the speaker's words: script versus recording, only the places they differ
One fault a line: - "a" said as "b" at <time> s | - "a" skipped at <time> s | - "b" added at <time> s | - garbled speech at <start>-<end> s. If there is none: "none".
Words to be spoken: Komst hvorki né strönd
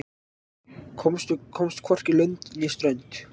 - "lönd" added at 2.2 s